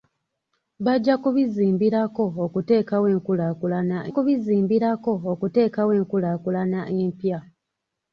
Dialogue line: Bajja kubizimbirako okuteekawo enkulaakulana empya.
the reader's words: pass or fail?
fail